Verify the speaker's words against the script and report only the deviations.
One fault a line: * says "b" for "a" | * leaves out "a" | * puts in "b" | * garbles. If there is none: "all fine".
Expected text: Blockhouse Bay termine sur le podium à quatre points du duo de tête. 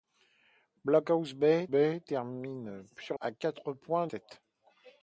* puts in "Bay"
* leaves out "le podium"
* leaves out "du duo de"